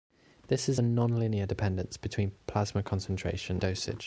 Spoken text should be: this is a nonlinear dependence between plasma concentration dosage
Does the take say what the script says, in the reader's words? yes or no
yes